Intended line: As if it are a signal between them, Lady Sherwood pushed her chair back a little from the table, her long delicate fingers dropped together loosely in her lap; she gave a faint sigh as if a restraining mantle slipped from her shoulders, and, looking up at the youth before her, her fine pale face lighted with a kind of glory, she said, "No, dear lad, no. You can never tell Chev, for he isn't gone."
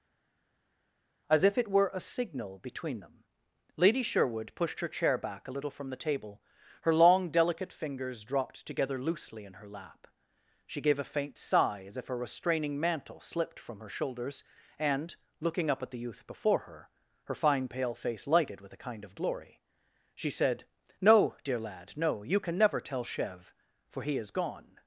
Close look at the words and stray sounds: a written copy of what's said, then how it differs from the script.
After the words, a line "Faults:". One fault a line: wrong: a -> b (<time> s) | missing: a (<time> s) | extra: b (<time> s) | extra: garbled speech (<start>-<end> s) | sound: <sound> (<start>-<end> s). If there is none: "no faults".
As if it were a signal between them, Lady Sherwood pushed her chair back a little from the table, her long delicate fingers dropped together loosely in her lap; she gave a faint sigh as if a restraining mantle slipped from her shoulders, and, looking up at the youth before her, her fine pale face lighted with a kind of glory, she said, "No, dear lad, no. You can never tell Chev, for he is gone."
Faults:
wrong: are -> were (1.7 s)
wrong: isn't -> is (24.2 s)